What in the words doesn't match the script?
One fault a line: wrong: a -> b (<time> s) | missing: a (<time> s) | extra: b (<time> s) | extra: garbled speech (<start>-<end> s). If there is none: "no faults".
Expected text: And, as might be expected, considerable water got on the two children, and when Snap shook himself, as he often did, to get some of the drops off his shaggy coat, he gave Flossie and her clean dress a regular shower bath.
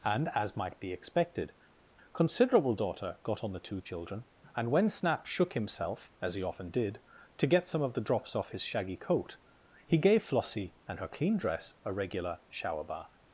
wrong: water -> daughter (2.7 s)